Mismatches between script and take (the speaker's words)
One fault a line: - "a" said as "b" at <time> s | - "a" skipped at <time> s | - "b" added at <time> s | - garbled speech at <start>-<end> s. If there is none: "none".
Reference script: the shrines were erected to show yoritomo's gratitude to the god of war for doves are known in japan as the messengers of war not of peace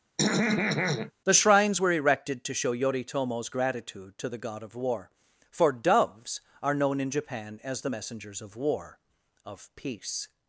- "not" skipped at 9.0 s